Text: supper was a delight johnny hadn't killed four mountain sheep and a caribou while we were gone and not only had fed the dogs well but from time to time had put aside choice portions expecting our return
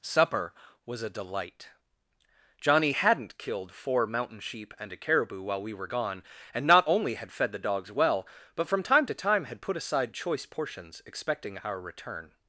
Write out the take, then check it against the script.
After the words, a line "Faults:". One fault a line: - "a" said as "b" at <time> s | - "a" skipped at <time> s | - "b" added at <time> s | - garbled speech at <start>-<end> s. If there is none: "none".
supper was a delight johnny hadn't killed four mountain sheep and a caribou while we were gone and not only had fed the dogs well but from time to time had put aside choice portions expecting our return
Faults:
none